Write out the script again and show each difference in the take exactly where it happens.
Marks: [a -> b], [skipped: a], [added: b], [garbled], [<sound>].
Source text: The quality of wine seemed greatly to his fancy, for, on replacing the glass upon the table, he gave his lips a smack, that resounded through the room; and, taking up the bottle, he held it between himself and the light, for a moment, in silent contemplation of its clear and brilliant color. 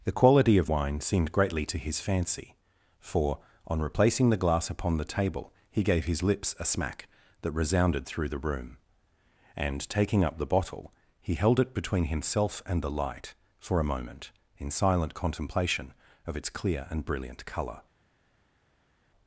The quality of wine seemed greatly to his fancy, for, on replacing the glass upon the table, he gave his lips a smack, that resounded through the room; and, taking up the bottle, he held it between himself and the light, for a moment, in silent contemplation of its clear and brilliant color.